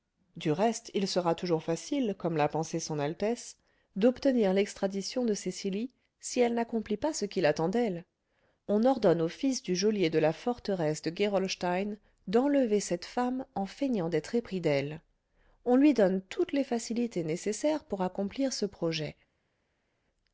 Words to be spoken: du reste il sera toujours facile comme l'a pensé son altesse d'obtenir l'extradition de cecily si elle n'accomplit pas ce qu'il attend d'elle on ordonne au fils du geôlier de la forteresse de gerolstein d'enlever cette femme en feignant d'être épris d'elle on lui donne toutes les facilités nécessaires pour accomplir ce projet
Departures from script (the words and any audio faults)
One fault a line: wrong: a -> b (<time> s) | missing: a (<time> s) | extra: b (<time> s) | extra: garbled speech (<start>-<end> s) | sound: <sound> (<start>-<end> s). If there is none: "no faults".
no faults